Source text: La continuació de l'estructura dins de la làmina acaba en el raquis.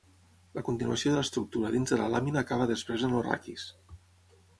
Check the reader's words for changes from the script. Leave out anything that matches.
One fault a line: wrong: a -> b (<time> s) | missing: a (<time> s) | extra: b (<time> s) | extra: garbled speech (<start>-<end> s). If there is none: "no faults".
extra: després (2.7 s)